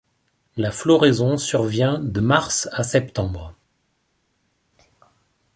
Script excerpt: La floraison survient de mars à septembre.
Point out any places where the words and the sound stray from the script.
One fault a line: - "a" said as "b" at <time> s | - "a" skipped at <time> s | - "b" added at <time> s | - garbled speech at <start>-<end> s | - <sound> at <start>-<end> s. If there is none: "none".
none